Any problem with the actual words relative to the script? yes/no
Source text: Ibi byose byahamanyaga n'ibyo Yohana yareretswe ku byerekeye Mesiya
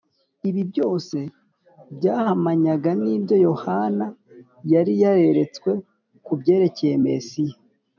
yes